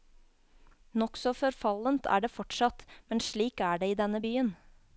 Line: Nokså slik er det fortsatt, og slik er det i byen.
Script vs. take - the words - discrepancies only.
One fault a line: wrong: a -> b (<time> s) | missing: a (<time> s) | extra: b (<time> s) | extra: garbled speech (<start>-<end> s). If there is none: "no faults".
wrong: slik -> forfallent (1.4 s)
wrong: og -> men (3.1 s)
extra: denne (4.0 s)